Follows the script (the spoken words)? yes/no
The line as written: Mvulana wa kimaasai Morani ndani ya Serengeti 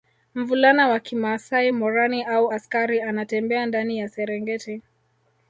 no